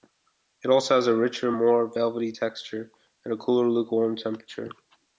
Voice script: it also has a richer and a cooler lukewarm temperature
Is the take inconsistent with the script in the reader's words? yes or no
yes